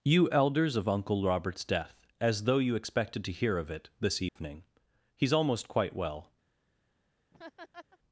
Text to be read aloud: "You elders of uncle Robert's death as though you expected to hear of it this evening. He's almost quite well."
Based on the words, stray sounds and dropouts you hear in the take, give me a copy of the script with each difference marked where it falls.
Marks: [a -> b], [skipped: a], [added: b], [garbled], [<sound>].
"You elders of uncle Robert's death as though you expected to hear of it this evening. [dropout] He's almost quite well." [laugh]